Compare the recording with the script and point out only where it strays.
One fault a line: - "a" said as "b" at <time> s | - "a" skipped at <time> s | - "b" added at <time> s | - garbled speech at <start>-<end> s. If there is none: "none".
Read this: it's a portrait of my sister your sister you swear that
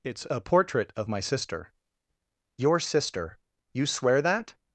none